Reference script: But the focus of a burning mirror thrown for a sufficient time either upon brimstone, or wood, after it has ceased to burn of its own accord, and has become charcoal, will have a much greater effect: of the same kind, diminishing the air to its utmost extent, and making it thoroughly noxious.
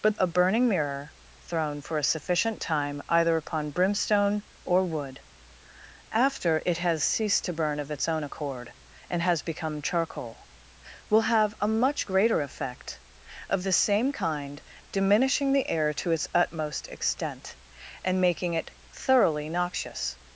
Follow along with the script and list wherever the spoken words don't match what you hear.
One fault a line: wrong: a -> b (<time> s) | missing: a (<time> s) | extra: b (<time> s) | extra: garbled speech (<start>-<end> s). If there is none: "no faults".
missing: the focus of (0.2 s)